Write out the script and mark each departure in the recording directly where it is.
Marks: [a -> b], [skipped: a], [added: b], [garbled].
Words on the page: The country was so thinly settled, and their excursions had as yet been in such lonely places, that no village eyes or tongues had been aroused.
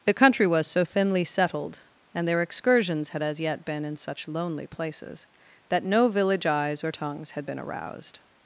The country was so thinly settled, and their excursions had as yet been in such lonely places, that no village eyes or tongues had been aroused.